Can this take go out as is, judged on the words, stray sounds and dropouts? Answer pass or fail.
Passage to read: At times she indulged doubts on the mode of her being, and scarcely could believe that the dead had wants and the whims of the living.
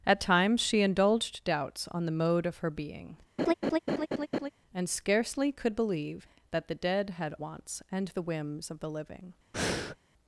fail